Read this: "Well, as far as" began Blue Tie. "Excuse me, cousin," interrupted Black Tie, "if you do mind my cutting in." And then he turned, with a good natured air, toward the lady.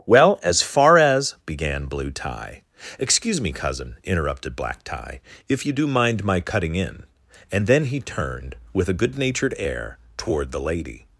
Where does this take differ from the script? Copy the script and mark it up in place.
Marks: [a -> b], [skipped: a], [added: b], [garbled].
"Well, as far as" began Blue Tie. "Excuse me, cousin," interrupted Black Tie, "if you do mind my cutting in." And then he turned, with a good natured air, toward the lady.